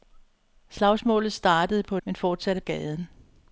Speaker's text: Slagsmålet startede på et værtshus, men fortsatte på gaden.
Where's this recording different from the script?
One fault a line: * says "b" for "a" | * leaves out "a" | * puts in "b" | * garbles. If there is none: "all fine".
* leaves out "et værtshus"
* leaves out "på"